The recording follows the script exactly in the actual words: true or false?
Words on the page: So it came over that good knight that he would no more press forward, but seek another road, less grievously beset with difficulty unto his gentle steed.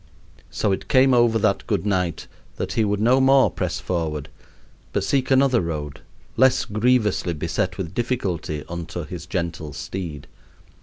true